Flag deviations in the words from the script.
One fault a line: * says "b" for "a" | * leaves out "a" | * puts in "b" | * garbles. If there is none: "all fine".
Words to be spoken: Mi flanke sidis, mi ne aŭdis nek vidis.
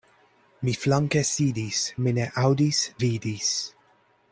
* leaves out "nek"